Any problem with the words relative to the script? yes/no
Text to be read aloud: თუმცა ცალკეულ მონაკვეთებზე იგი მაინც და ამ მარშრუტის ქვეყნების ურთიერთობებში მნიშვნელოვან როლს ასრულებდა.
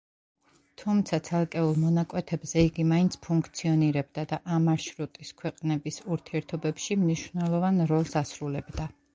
yes